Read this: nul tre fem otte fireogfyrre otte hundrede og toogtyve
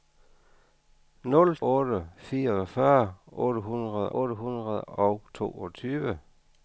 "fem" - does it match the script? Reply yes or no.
no